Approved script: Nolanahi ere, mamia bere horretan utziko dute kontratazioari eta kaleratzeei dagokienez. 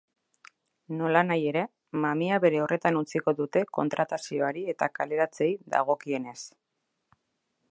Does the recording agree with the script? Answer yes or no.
yes